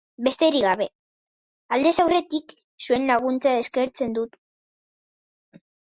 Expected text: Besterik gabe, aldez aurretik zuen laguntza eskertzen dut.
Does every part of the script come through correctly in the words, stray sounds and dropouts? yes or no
yes